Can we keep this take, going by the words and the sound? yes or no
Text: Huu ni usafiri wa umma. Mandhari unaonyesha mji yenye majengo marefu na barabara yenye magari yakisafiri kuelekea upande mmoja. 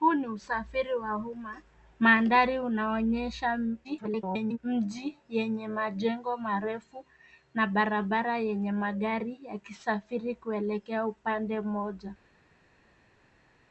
no